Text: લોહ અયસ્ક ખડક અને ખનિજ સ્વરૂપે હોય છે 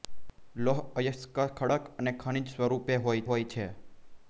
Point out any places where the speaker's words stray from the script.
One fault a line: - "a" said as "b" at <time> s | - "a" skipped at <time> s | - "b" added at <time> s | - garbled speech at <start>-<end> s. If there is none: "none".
- "હોય" added at 3.3 s